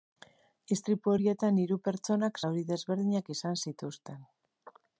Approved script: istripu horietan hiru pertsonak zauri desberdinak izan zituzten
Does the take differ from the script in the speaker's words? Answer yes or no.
no